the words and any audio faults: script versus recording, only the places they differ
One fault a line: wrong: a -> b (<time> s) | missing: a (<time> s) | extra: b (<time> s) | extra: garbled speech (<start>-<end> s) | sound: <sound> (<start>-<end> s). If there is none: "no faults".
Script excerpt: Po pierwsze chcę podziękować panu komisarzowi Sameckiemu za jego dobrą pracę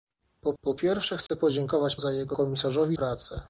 extra: po (0.6 s)
sound: dropout (1.3-1.3 s)
missing: panu komisarzowi Sameckiemu (2.0 s)
wrong: dobrą -> komisarzowi (2.3 s)